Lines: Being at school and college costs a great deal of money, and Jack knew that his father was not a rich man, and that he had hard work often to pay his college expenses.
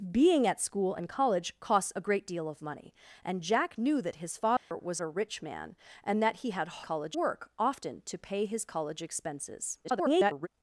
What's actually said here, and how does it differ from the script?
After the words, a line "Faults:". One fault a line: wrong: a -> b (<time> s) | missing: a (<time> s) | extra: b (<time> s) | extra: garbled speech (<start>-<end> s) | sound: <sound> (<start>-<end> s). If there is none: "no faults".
Being at school and college costs a great deal of money, and Jack knew that his father was a rich man, and that he had college work often to pay his college expenses. [garbled]
Faults:
sound: dropout (4.6-4.7 s)
missing: not (5.0 s)
wrong: hard -> college (6.8 s)
extra: garbled speech (9.8-10.5 s)